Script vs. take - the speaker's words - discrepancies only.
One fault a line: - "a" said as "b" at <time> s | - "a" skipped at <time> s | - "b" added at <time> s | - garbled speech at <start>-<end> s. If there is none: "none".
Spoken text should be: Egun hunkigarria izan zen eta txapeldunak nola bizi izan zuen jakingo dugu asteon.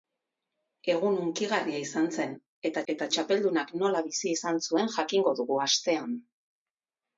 - "eta" added at 2.9 s